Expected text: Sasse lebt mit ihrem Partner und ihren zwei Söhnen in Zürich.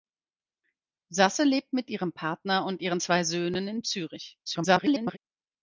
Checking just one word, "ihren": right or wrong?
right